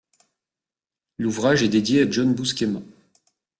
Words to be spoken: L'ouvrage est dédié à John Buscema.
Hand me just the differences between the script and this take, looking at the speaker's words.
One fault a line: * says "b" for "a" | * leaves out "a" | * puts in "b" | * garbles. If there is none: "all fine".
all fine